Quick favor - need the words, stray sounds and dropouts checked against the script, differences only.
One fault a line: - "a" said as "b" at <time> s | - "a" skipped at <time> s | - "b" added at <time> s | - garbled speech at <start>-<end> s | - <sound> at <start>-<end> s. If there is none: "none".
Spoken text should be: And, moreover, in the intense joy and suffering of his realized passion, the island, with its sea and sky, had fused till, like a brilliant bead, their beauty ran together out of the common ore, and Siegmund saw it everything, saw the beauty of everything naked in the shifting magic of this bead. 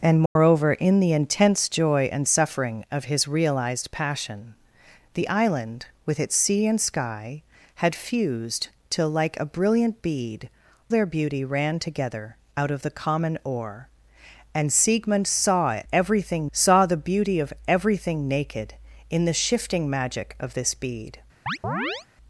- dropout at 0.3-0.4 s
- chirp at 21.5-22.1 s